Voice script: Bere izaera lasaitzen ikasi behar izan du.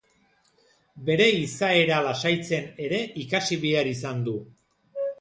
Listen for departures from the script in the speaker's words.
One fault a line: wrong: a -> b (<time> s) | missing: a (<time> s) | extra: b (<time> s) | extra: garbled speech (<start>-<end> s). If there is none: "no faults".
extra: ere (2.9 s)